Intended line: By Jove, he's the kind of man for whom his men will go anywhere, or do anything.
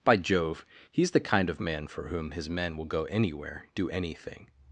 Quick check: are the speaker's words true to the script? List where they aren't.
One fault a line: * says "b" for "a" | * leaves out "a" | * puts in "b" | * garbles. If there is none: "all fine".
* leaves out "or"